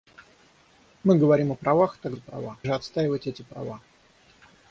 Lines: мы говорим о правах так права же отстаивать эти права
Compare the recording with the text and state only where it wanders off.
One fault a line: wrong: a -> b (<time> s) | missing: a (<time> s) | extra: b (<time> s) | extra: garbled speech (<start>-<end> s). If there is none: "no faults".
no faults